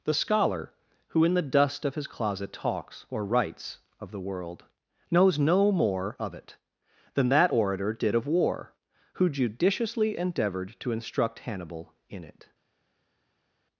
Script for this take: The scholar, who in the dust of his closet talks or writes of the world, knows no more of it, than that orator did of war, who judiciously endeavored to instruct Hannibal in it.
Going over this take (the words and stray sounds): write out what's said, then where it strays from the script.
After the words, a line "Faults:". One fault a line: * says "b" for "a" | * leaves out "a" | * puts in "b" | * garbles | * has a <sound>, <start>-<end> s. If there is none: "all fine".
The scholar, who in the dust of his closet talks or writes of the world, knows no more of it, than that orator did of war, who judiciously endeavored to instruct Hannibal in it.
Faults:
all fine